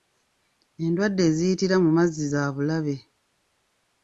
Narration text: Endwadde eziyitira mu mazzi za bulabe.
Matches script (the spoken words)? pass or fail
pass